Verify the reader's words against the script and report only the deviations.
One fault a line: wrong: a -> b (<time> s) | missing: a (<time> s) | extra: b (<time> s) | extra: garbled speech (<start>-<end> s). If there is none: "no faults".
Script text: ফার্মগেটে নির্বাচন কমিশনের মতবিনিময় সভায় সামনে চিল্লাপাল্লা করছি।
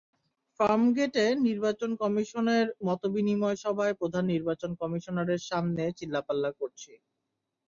extra: প্রধান নির্বাচন কমিশনারের (4.0 s)